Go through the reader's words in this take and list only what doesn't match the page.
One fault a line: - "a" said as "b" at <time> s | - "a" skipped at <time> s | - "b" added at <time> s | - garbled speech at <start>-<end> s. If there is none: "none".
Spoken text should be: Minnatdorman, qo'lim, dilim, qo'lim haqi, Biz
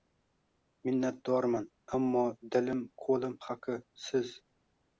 - "qo'lim" said as "ammo" at 2.0 s
- "Biz" said as "Siz" at 4.1 s